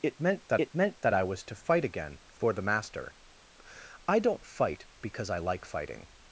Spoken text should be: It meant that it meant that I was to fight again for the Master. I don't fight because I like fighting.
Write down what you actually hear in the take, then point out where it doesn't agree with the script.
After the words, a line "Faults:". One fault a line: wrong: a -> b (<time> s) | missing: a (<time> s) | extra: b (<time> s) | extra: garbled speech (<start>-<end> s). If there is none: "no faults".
It meant that it meant that I was to fight again for the Master. I don't fight because I like fighting.
Faults:
no faults